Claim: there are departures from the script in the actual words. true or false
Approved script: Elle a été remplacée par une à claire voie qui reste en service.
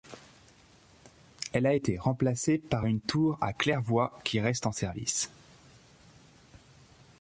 true